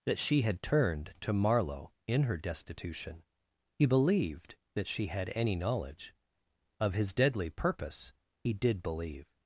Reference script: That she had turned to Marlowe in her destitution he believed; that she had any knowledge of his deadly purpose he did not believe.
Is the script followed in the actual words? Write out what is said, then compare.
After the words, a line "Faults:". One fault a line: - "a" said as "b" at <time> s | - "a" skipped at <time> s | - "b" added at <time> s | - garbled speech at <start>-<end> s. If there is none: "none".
That she had turned to Marlowe in her destitution he believed; that she had any knowledge of his deadly purpose he did believe.
Faults:
- "not" skipped at 8.8 s